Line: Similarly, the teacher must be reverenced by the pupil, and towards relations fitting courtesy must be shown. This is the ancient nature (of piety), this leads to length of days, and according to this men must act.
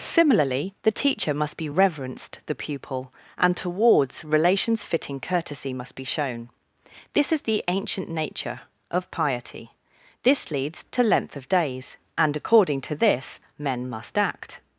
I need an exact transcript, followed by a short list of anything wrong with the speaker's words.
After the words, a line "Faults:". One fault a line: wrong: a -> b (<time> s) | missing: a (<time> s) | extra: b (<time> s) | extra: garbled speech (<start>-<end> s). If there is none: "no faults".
Similarly, the teacher must be reverenced the pupil, and towards relations fitting courtesy must be shown. This is the ancient nature (of piety), this leads to length of days, and according to this men must act.
Faults:
missing: by (2.4 s)